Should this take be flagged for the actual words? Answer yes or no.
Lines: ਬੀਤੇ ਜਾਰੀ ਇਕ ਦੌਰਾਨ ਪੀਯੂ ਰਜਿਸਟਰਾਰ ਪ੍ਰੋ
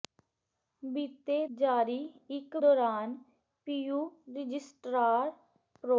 no